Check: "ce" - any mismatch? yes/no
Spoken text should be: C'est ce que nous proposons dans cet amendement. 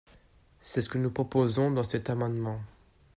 no